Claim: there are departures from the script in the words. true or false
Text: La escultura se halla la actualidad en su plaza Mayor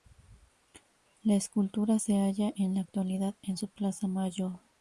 true